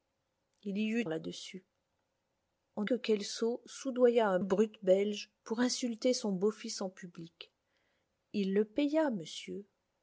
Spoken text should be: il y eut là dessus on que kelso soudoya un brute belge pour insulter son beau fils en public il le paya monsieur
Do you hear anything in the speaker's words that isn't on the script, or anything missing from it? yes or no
no